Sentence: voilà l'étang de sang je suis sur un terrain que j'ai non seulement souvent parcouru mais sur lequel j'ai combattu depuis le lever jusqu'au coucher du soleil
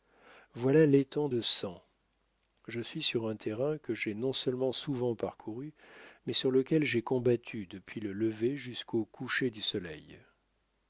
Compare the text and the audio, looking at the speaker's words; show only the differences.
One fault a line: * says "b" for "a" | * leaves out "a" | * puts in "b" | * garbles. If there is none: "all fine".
all fine